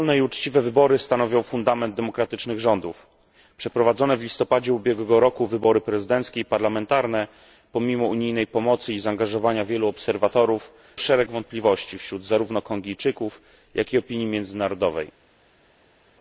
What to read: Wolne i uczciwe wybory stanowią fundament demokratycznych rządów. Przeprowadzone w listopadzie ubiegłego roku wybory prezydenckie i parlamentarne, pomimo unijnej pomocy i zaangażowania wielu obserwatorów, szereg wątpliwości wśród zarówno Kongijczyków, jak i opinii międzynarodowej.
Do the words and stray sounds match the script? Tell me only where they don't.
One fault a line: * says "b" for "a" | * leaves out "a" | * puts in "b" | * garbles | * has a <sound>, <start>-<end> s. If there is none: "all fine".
all fine